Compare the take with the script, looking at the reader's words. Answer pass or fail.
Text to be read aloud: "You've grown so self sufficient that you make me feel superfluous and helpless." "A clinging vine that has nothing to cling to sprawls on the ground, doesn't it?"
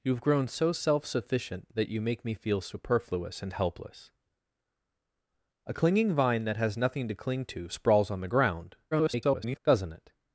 fail